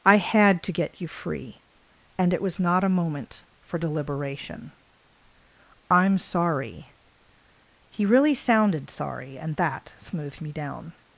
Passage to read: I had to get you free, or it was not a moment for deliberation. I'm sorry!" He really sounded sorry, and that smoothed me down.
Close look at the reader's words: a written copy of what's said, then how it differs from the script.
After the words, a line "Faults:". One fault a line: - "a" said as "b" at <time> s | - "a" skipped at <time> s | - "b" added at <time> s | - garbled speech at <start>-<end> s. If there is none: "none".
I had to get you free, and it was not a moment for deliberation. I'm sorry!" He really sounded sorry, and that smoothed me down.
Faults:
- "or" said as "and" at 2.2 s